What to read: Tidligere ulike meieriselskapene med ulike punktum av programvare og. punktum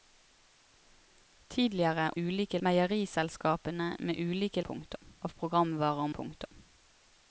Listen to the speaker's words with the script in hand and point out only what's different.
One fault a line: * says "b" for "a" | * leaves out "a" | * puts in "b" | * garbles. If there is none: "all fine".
all fine